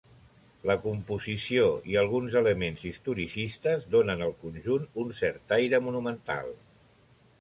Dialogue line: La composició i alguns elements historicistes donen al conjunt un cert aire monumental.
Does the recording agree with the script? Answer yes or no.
yes